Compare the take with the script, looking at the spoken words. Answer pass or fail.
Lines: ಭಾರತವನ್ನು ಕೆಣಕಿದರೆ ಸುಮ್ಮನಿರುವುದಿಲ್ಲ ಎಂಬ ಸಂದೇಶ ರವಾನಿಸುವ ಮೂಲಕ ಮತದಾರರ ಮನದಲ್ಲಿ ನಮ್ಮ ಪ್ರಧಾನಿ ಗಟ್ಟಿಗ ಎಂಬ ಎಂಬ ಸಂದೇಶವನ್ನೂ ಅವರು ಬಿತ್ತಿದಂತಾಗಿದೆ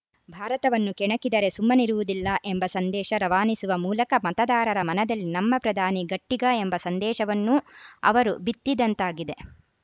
fail